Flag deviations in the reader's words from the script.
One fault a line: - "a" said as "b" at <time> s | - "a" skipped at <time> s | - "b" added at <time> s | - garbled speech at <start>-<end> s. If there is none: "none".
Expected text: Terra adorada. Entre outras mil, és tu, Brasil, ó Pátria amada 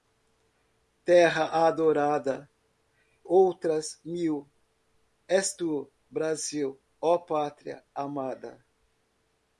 - "Entre" skipped at 2.5 s